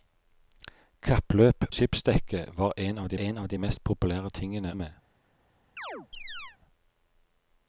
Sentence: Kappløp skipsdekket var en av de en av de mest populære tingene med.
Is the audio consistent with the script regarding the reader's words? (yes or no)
yes